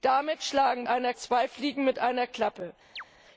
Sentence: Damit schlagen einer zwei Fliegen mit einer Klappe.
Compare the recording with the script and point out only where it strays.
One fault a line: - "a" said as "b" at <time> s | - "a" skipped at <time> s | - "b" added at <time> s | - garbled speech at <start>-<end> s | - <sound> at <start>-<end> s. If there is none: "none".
- chirp at 3.0-3.0 s